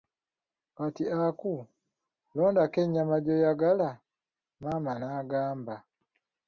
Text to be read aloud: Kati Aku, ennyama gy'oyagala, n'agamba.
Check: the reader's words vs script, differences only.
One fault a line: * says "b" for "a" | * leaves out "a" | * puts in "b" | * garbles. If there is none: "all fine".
* puts in "londako"
* puts in "maama"